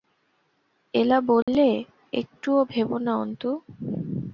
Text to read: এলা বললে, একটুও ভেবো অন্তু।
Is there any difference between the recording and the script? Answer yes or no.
yes